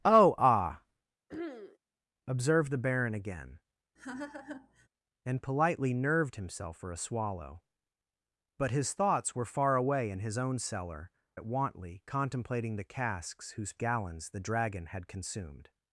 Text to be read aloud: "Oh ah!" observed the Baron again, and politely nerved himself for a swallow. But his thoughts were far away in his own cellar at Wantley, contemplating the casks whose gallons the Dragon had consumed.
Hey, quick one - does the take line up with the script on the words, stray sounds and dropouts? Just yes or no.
no